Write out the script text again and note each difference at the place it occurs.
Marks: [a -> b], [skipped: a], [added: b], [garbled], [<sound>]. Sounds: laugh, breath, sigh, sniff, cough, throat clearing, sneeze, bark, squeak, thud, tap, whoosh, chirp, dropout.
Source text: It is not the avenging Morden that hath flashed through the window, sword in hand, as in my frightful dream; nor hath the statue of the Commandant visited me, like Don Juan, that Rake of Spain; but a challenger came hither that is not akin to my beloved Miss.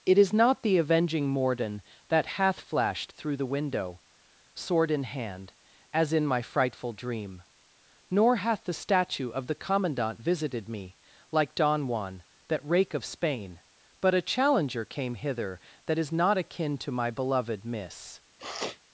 It is not the avenging Morden that hath flashed through the window, sword in hand, as in my frightful dream; nor hath the statue of the Commandant visited me, like Don Juan, that Rake of Spain; but a challenger came hither that is not akin to my beloved Miss. [sniff]